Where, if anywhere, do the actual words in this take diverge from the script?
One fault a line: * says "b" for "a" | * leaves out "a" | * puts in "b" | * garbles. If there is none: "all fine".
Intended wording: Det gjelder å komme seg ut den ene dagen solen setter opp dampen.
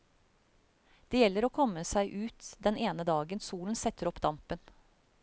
all fine